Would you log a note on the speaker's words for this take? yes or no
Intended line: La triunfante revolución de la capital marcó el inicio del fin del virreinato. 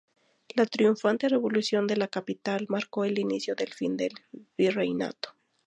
no